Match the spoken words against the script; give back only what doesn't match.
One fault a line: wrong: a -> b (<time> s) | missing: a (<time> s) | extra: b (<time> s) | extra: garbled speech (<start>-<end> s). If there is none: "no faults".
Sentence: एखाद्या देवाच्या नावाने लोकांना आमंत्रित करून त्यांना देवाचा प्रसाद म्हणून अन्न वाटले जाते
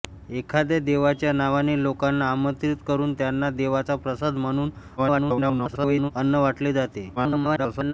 extra: garbled speech (5.0-6.1 s)
extra: garbled speech (7.2-7.9 s)